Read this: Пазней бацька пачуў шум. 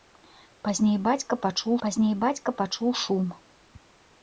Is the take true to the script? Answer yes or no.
no